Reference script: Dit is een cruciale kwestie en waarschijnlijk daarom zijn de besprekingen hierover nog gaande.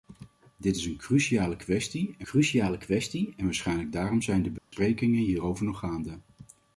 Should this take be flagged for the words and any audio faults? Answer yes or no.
yes